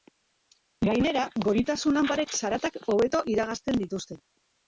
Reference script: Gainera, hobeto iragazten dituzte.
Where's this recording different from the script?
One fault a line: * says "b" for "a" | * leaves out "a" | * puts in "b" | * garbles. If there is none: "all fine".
* puts in "goritasun lanparek zaratak"